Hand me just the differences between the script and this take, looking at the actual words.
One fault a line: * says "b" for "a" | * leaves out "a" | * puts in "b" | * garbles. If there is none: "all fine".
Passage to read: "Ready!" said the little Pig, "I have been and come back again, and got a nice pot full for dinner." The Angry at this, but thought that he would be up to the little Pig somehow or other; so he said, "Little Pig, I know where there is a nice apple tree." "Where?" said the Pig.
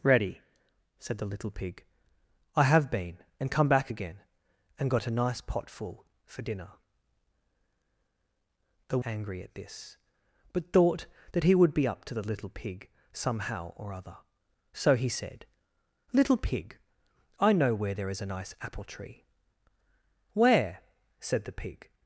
all fine